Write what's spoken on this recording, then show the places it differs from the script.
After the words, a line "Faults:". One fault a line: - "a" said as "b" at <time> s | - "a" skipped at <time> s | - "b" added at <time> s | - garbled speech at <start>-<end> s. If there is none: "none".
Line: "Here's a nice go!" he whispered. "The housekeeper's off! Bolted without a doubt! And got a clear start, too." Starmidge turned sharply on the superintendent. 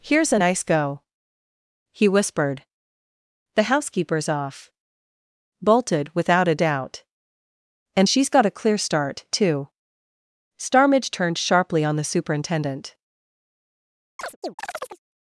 "Here's a nice go!" he whispered. "The housekeeper's off! Bolted without a doubt! And she's got a clear start, too." Starmidge turned sharply on the superintendent.
Faults:
- "she's" added at 8.0 s